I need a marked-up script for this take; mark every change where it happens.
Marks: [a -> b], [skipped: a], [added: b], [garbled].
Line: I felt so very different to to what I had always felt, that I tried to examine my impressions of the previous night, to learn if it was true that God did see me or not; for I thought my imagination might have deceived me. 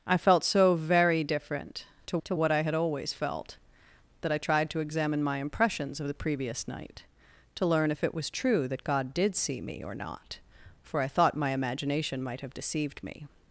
I felt so very different to to what I had always felt, that I tried to examine my impressions of the previous night, to learn if it was true that God did see me or not; for I thought my imagination might have deceived me.